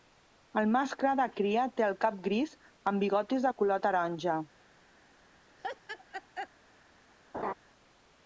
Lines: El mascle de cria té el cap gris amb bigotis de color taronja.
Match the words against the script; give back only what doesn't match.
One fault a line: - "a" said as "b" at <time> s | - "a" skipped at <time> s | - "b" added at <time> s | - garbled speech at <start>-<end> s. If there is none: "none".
none